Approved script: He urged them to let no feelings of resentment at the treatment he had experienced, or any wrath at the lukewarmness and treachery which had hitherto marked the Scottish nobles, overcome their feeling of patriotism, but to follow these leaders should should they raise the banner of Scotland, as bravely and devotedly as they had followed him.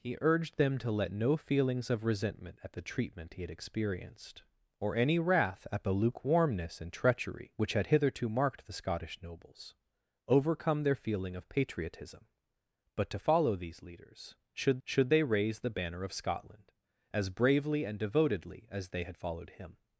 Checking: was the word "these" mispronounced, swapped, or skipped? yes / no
no